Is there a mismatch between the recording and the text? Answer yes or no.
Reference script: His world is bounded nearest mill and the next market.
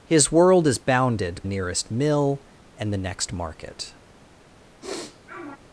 no